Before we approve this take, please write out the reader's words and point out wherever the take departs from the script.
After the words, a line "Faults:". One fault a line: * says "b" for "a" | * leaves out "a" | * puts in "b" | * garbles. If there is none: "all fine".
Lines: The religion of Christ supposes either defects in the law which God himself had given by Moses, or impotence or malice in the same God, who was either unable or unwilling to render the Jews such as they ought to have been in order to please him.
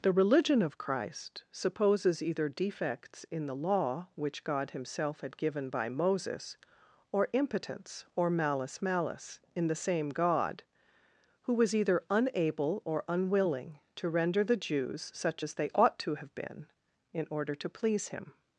The religion of Christ supposes either defects in the law which God himself had given by Moses, or impotence or malice malice in the same God, who was either unable or unwilling to render the Jews such as they ought to have been in order to please him.
Faults:
* puts in "malice"